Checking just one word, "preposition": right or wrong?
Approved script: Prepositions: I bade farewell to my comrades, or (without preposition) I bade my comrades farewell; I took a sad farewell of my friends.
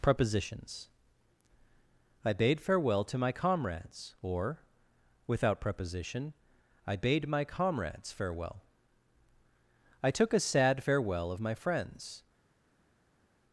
right